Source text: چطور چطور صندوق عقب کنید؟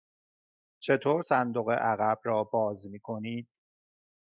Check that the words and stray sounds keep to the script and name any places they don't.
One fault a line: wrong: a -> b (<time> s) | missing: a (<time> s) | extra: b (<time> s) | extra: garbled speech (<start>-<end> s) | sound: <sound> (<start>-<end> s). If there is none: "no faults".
missing: چطور (1.2 s)
extra: را باز می (2.2 s)